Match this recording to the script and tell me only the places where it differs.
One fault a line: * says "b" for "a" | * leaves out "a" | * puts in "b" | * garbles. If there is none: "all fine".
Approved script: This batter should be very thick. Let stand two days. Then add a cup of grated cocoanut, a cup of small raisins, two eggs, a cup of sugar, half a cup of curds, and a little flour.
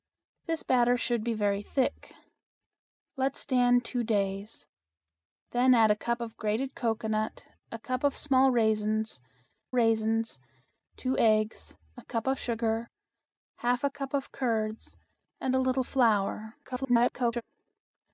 * puts in "raisins"
* garbles